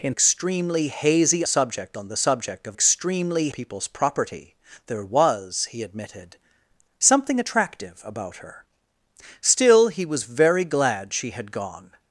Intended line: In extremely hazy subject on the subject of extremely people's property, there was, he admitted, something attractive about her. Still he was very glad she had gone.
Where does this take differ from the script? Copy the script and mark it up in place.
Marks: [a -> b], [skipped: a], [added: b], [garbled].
In extremely hazy subject on the subject of extremely people's property, there was, he admitted, something attractive about her. Still he was very glad she had gone.